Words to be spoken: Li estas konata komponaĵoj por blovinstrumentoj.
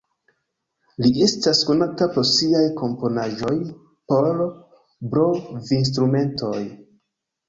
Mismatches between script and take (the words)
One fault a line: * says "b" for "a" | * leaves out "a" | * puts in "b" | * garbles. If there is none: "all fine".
* puts in "pro siaj"